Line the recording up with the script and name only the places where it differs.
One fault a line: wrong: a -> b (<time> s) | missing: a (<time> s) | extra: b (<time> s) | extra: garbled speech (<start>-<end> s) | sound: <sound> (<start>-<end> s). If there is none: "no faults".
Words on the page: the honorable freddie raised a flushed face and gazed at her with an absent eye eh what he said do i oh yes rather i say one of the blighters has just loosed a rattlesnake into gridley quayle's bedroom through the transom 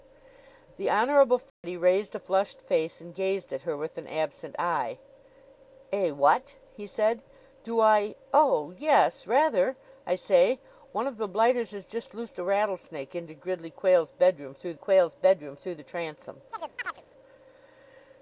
sound: dropout (1.5-1.6 s)
extra: quayle's bedroom through (14.8 s)
sound: chirp (16.5-17.0 s)